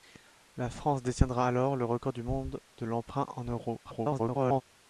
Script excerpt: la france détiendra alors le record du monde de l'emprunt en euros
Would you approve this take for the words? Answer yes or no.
no